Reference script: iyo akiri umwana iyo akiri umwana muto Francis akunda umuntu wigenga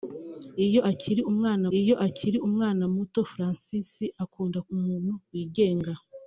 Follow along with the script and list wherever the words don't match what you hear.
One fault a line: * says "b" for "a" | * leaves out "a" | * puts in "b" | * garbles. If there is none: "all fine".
all fine